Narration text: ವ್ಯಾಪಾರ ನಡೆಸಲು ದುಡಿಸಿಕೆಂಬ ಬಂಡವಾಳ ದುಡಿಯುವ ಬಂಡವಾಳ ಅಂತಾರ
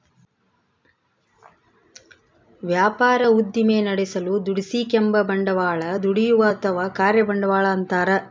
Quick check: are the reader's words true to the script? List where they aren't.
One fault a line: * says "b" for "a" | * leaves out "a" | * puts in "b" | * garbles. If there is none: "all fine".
* puts in "ಉದ್ದಿಮೆ"
* puts in "ಅಥವಾ ಕಾರ್ಯ"